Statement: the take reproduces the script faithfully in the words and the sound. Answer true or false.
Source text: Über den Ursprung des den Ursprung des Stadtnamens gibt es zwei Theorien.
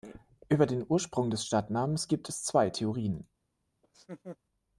false